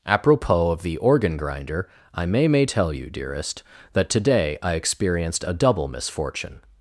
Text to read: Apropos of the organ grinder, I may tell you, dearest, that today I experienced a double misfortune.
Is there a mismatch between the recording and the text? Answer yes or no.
yes